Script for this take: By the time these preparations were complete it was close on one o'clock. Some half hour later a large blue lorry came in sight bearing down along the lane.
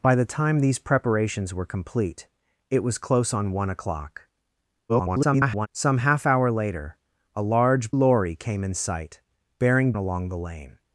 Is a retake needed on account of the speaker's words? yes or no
yes